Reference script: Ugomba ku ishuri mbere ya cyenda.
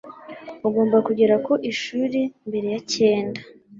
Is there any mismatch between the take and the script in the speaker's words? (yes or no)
yes